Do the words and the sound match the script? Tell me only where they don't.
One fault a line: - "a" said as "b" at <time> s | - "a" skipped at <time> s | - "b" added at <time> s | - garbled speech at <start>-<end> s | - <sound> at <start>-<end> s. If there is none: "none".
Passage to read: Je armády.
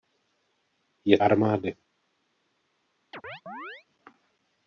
- chirp at 3.1-3.9 s